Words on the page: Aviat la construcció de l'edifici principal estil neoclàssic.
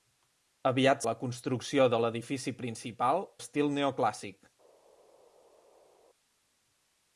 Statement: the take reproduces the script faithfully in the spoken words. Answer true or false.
true